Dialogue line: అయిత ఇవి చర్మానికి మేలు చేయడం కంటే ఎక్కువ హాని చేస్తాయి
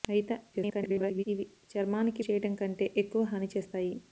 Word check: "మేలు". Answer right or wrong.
wrong